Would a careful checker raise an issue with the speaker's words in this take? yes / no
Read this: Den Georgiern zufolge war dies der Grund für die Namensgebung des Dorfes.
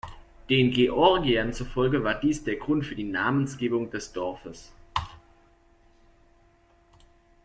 no